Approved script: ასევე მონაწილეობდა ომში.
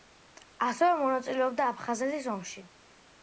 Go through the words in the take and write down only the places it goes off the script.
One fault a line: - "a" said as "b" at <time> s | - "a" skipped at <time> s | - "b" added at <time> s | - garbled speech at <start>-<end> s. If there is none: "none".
- "აფხაზეთის" added at 1.7 s